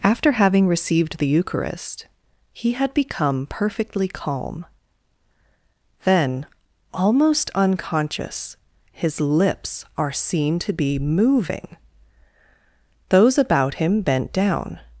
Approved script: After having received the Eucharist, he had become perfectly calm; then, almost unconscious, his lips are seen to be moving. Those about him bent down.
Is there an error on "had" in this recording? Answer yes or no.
no